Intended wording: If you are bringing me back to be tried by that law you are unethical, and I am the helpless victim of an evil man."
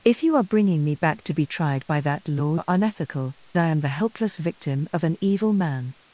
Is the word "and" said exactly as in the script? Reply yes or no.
no